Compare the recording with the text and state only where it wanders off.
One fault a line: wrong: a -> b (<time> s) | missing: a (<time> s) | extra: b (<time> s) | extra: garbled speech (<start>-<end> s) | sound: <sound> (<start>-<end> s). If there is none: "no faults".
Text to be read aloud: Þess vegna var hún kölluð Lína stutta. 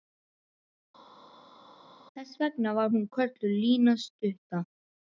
no faults